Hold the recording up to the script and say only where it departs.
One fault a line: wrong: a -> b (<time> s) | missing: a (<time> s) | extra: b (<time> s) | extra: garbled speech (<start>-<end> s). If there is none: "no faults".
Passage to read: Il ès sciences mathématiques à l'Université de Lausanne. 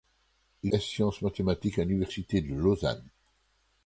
no faults